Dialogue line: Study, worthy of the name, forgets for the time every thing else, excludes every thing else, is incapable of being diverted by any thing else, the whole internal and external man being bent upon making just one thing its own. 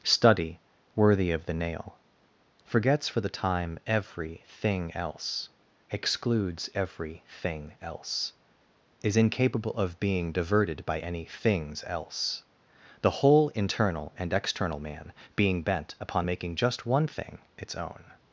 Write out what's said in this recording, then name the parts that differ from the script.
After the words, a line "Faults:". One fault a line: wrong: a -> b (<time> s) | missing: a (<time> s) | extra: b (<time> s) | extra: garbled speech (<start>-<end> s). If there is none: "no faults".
Study, worthy of the nail, forgets for the time every thing else, excludes every thing else, is incapable of being diverted by any things else, the whole internal and external man being bent upon making just one thing its own.
Faults:
wrong: name -> nail (1.5 s)
wrong: thing -> things (11.2 s)